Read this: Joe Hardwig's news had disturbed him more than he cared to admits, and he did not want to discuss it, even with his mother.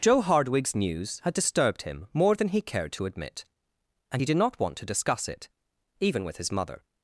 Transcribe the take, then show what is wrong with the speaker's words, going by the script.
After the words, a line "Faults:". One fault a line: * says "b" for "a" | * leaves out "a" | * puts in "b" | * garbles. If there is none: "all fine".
Joe Hardwig's news had disturbed him more than he cared to admit, and he did not want to discuss it, even with his mother.
Faults:
* says "admit" for "admits"